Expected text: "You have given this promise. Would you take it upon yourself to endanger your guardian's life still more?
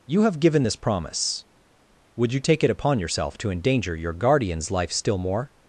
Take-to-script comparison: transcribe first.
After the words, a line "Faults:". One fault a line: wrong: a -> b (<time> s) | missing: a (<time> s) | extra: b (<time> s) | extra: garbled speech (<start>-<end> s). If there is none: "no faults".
"You have given this promise. Would you take it upon yourself to endanger your guardian's life still more?
Faults:
no faults